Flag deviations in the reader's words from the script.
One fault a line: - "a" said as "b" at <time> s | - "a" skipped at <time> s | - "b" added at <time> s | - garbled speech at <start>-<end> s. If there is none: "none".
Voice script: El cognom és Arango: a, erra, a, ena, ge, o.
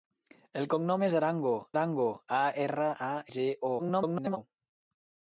- "Arango" added at 1.7 s
- "ena" skipped at 3.1 s
- garbled speech at 3.8-4.4 s